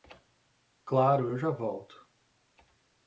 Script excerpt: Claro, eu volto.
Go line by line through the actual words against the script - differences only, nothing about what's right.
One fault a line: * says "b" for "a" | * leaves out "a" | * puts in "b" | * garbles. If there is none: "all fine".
* puts in "já"